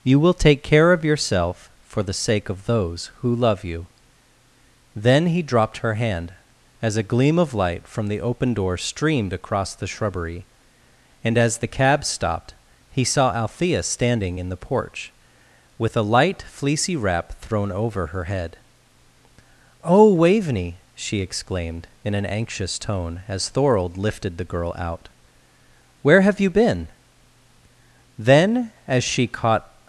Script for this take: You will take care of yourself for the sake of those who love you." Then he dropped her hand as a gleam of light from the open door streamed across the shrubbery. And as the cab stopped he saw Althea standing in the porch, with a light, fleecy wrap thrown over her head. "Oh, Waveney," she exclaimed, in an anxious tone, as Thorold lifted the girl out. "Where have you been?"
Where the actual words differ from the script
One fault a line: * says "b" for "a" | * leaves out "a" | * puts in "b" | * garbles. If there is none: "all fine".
* puts in "Then as she caught"